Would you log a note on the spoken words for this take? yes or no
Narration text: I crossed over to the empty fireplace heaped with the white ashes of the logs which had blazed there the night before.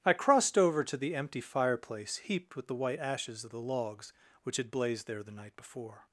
no